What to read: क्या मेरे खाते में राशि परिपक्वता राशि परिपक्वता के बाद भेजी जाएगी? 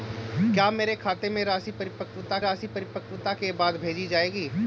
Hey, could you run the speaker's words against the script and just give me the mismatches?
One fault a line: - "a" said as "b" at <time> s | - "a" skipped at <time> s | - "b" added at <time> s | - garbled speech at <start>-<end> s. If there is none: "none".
none